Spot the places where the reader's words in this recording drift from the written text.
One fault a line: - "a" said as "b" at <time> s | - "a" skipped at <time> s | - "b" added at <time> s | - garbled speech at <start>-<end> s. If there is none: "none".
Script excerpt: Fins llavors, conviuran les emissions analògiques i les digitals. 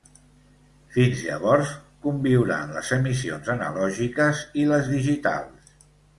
none